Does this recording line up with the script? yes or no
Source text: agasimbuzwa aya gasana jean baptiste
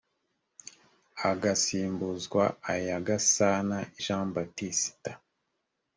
yes